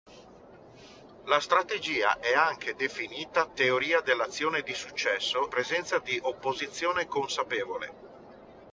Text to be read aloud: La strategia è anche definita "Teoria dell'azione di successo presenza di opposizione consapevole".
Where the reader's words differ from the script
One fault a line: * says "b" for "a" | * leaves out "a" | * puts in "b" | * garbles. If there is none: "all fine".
all fine